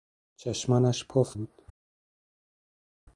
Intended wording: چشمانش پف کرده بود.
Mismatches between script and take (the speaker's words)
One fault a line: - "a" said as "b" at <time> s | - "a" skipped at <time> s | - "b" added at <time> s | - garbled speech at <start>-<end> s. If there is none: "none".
- "کرده" skipped at 1.4 s